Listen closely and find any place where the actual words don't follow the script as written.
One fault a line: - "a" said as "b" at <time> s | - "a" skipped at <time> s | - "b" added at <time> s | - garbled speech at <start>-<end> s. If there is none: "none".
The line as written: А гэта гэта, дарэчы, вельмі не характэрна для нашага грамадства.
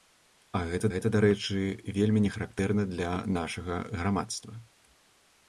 none